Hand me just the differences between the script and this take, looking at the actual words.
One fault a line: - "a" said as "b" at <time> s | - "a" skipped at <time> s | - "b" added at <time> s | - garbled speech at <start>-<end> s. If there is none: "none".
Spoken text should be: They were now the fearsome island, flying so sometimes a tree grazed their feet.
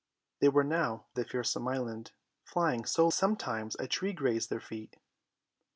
none